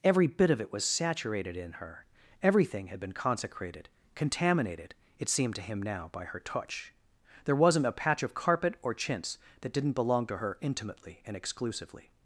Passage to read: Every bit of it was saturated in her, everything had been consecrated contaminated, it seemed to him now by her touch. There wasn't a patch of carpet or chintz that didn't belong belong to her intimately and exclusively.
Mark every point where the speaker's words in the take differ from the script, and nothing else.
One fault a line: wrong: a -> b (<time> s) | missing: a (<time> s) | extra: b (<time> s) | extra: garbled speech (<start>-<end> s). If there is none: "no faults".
missing: belong (10.3 s)